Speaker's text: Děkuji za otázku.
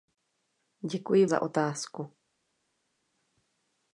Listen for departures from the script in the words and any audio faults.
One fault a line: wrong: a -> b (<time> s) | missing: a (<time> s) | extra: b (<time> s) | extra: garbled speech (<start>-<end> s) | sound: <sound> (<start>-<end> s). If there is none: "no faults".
no faults